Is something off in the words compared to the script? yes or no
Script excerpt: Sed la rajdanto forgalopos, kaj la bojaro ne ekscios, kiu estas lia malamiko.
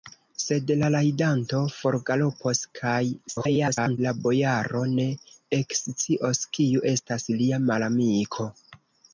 yes